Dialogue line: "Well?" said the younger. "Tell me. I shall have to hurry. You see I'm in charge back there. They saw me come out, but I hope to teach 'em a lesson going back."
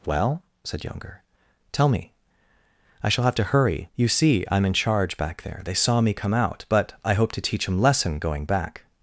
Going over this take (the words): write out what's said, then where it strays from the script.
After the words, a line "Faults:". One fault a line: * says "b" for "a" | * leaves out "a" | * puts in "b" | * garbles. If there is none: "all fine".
"Well?" said younger. "Tell me. I shall have to hurry. You see I'm in charge back there. They saw me come out, but I hope to teach 'em lesson going back."
Faults:
* leaves out "the"
* leaves out "a"